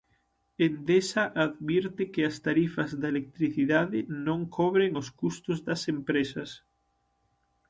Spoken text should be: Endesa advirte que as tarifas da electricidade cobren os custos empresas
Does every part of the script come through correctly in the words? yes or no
no